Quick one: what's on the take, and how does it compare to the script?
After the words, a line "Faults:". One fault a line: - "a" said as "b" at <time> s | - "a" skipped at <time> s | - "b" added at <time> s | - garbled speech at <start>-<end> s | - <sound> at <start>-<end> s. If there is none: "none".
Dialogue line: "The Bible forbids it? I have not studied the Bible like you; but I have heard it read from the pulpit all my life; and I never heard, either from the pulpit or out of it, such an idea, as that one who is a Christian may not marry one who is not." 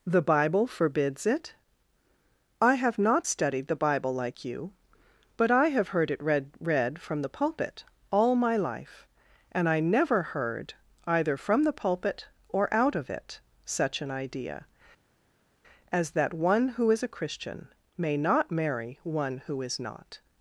"The Bible forbids it? I have not studied the Bible like you; but I have heard it read read from the pulpit all my life; and I never heard, either from the pulpit or out of it, such an idea, as that one who is a Christian may not marry one who is not."
Faults:
- "read" added at 6.6 s